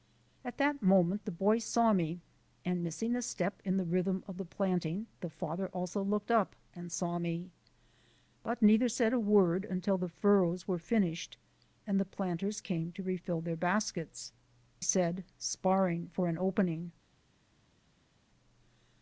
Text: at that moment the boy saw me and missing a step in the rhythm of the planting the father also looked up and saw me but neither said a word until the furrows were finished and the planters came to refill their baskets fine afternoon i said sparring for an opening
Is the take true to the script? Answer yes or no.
no